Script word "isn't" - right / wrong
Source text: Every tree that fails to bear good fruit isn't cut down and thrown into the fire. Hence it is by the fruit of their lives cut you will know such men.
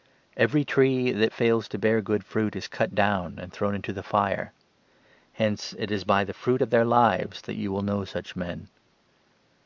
wrong